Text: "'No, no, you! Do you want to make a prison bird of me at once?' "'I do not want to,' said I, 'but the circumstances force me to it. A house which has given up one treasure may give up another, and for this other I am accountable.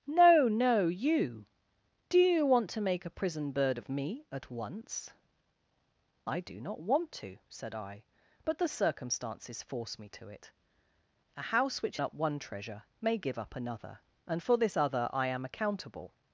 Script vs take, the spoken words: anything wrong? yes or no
yes